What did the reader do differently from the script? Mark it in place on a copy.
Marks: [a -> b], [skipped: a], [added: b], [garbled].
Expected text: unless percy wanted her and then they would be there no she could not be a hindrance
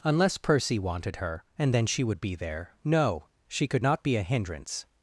unless percy wanted her and then [they -> she] would be there no she could not be a hindrance